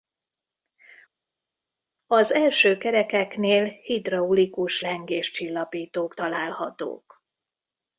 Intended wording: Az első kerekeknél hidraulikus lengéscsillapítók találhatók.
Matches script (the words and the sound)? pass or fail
pass